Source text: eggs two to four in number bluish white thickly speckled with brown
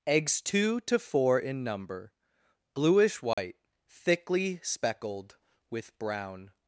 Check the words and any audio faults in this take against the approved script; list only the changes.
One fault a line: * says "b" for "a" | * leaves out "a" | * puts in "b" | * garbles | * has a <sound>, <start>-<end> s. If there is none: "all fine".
* has a dropout, 3.3-3.4 s